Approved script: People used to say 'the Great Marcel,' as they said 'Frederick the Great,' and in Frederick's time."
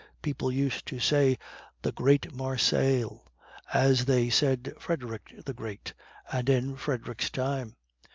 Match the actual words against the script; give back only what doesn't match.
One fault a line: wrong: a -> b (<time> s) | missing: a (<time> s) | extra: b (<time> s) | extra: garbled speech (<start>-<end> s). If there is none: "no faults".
no faults